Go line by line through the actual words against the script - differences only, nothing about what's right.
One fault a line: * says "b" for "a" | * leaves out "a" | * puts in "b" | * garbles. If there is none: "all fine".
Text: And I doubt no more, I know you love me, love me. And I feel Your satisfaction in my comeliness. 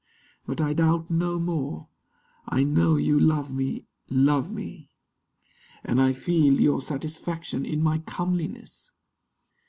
* says "But" for "And"